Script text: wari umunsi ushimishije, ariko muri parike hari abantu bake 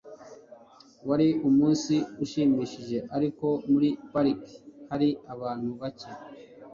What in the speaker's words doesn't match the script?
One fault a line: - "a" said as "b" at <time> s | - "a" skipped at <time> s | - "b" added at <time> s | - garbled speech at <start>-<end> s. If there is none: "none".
none